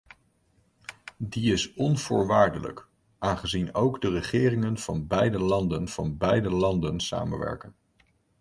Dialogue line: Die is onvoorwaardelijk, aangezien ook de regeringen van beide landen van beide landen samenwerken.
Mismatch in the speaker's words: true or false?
false